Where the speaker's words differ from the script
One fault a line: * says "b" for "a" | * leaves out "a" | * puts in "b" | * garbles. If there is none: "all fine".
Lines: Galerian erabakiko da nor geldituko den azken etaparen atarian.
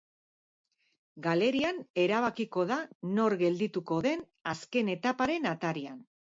all fine